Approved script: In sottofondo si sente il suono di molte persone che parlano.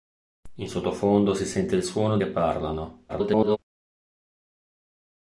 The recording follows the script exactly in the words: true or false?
false